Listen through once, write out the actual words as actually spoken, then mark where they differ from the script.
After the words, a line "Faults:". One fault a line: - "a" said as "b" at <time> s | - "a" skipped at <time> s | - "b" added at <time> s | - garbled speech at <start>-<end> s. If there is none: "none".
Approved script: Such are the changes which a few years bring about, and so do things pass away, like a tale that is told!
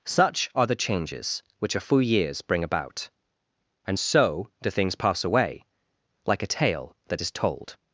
Such are the changes which a few years bring about, and so do things pass away, like a tale that is told!
Faults:
none